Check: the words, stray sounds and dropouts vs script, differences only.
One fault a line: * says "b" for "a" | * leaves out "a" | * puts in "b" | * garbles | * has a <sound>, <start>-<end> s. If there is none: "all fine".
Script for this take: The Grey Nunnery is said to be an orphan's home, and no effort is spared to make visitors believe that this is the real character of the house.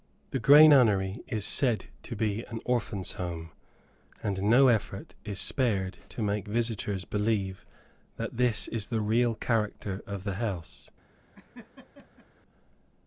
* has a laugh, 11.3-12.3 s